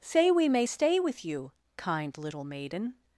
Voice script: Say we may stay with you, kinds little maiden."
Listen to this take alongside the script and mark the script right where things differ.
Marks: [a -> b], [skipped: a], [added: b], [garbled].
Say we may stay with you, [kinds -> kind] little maiden."